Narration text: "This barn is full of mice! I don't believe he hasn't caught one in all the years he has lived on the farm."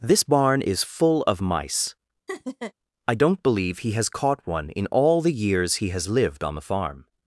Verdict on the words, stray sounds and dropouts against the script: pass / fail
fail